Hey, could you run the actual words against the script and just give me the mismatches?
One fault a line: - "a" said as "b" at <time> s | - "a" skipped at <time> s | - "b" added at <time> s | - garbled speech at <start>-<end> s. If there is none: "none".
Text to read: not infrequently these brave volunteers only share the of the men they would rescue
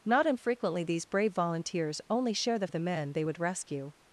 none